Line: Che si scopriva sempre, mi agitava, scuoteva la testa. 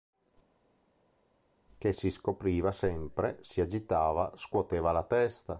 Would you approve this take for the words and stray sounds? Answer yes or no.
no